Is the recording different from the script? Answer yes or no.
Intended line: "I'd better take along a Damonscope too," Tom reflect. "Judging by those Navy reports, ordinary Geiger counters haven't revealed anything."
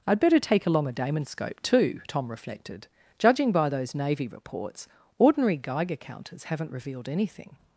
yes